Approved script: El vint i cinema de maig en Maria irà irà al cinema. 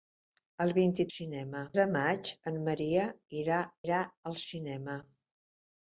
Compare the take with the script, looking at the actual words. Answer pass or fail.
pass